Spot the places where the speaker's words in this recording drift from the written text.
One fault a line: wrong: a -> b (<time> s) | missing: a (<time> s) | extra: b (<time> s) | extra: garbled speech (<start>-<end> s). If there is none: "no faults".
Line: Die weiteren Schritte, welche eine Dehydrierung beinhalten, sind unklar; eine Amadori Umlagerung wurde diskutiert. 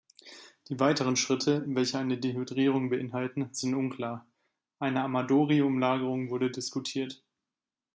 no faults